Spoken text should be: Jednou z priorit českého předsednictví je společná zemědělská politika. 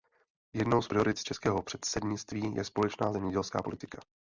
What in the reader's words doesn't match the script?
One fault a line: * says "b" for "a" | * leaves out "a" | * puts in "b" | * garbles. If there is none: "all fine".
all fine